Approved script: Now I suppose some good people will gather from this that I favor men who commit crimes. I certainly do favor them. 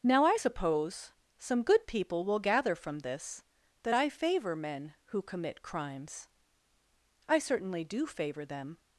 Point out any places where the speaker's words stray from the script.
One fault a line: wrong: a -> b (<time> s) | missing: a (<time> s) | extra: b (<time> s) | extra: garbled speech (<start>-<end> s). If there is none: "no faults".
no faults